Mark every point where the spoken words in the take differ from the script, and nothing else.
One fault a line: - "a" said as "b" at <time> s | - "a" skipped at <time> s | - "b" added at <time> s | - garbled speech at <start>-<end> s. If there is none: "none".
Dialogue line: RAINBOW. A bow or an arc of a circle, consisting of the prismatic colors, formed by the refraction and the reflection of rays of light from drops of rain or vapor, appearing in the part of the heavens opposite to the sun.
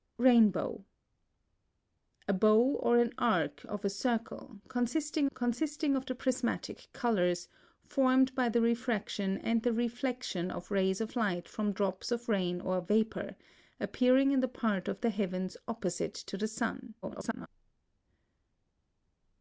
- "consisting" added at 5.3 s
- garbled speech at 17.0-17.5 s